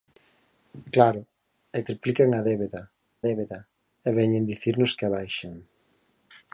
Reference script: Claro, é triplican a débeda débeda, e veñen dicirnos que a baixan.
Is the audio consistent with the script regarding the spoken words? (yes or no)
yes